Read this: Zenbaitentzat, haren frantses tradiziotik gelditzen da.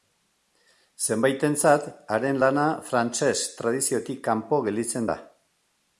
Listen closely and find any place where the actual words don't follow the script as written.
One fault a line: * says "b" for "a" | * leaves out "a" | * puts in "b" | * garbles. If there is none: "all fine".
* puts in "lana"
* puts in "kanpo"